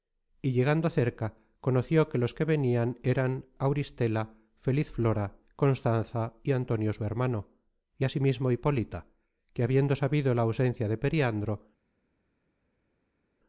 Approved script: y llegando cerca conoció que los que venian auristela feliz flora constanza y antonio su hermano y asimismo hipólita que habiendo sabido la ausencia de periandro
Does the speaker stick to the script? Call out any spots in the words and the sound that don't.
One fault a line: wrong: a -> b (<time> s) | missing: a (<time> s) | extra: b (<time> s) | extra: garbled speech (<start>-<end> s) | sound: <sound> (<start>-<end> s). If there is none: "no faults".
extra: eran (3.0 s)